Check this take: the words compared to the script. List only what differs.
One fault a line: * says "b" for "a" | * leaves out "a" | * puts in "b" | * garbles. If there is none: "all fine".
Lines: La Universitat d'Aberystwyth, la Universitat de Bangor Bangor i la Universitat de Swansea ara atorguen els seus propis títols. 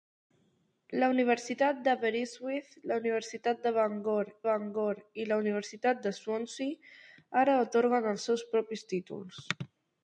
all fine